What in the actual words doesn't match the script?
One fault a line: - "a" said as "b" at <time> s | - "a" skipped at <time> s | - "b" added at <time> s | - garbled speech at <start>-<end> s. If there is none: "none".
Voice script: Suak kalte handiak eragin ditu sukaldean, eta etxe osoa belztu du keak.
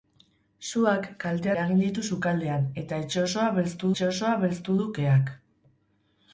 - "handiak" skipped at 1.5 s
- "etxe osoa belztu" added at 3.9 s